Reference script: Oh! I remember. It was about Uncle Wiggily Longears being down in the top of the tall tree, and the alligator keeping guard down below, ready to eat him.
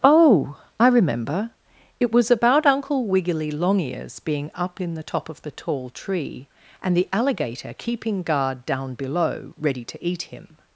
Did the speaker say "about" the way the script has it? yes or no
yes